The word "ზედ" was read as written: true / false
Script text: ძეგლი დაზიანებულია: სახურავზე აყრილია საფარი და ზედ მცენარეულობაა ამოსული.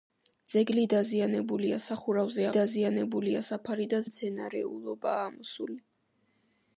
false